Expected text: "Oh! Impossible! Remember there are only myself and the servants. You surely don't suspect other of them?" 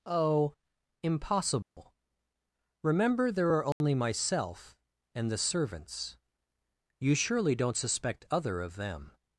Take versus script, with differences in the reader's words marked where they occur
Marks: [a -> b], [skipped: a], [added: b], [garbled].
"Oh! Impossible! Remember there are only myself and the servants. You surely don't suspect other of them?"